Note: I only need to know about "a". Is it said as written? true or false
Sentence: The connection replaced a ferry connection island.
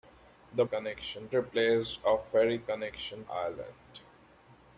true